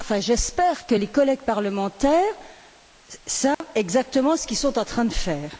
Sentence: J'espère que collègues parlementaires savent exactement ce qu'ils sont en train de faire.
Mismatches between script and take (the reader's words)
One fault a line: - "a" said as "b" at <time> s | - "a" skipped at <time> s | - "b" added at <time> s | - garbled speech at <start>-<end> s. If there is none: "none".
- "les" added at 0.9 s